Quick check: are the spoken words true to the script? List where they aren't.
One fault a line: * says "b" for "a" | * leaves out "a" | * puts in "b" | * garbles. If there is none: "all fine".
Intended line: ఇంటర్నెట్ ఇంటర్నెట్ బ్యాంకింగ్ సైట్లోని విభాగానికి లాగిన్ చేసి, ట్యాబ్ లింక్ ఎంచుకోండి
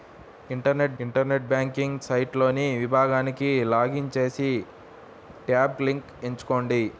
all fine